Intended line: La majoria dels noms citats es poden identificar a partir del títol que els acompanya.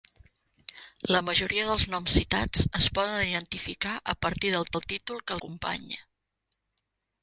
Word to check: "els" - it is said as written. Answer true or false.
false